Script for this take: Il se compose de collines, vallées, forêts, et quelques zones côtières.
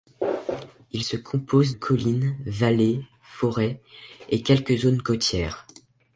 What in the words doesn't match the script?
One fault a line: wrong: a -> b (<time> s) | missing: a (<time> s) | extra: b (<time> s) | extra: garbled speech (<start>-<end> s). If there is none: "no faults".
missing: de (1.7 s)